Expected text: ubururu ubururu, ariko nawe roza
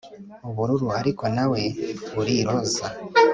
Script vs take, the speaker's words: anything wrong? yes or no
yes